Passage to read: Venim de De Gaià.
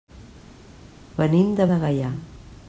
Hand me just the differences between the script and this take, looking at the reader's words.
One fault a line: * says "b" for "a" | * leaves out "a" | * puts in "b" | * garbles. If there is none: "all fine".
all fine